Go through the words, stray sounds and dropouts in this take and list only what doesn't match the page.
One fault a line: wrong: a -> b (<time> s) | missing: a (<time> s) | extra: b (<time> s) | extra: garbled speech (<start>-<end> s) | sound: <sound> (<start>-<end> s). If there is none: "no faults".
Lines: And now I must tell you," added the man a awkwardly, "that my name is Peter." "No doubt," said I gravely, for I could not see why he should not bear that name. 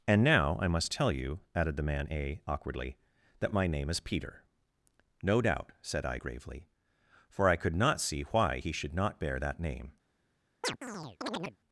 sound: chirp (10.6-11.6 s)